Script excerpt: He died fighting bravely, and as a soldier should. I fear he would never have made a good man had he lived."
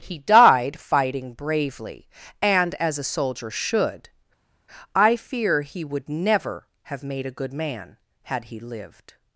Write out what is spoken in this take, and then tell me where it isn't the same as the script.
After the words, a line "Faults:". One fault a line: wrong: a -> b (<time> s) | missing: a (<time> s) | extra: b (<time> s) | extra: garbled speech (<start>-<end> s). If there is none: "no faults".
He died fighting bravely, and as a soldier should. I fear he would never have made a good man had he lived."
Faults:
no faults